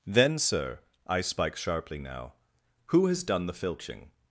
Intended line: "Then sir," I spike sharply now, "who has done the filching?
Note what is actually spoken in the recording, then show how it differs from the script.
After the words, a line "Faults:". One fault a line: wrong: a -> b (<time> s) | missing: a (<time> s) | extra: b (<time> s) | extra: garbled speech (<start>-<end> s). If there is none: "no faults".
"Then sir," I spike sharply now, "who has done the filching?
Faults:
no faults